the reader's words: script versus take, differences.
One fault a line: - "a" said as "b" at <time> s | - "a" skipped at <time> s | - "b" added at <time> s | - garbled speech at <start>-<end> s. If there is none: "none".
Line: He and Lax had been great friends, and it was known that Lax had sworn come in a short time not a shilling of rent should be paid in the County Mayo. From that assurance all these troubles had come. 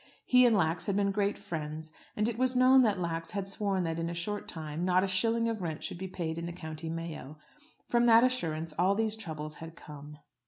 - "come" said as "that" at 3.8 s